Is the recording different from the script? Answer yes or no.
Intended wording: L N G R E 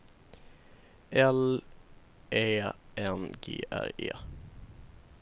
yes